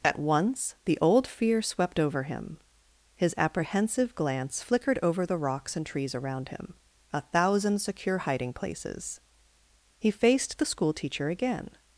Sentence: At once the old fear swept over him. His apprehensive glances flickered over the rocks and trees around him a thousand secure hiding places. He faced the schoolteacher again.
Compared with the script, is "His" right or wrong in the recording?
right